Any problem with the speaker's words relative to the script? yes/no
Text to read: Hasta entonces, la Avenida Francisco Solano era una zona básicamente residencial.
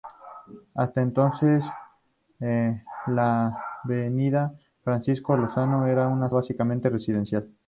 yes